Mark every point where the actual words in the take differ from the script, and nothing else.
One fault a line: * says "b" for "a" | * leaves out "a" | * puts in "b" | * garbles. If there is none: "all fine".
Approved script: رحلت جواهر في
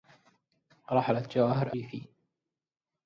all fine